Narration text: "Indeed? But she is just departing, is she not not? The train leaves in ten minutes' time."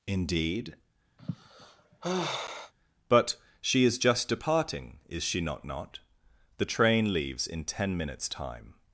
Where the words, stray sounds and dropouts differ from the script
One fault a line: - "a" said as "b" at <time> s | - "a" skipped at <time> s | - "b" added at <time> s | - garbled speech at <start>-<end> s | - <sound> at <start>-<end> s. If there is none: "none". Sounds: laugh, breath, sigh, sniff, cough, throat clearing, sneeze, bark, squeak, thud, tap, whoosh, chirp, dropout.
- sigh at 1.2-2.7 s